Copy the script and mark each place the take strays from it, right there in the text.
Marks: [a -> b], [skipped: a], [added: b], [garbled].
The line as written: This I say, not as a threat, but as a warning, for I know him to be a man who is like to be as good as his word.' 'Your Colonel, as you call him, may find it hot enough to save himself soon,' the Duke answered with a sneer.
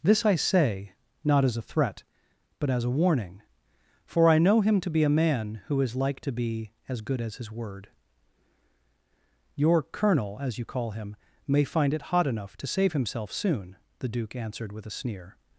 This I say, not as a threat, but as a warning, for I know him to be a man who is like to be as good as his word.' 'Your Colonel, as you call him, may find it hot enough to save himself soon,' the Duke answered with a sneer.